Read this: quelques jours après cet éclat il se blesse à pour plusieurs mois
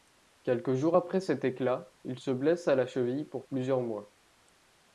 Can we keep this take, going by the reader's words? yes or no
no